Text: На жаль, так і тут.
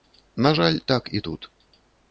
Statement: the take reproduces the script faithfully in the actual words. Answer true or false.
true